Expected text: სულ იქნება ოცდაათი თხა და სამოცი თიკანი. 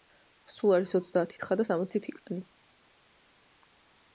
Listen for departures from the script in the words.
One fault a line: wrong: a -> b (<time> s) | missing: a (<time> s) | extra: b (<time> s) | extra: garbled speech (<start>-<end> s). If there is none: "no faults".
wrong: იქნება -> არის (0.8 s)